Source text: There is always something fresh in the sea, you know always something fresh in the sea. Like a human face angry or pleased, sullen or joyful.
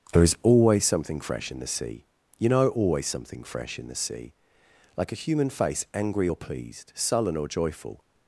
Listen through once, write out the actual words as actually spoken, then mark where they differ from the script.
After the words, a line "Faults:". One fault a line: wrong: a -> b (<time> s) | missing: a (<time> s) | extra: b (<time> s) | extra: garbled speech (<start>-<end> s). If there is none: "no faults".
There is always something fresh in the sea, you know always something fresh in the sea. Like a human face angry or pleased, sullen or joyful.
Faults:
no faults